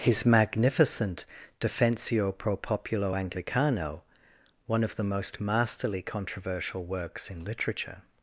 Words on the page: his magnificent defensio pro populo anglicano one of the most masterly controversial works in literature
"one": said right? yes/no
yes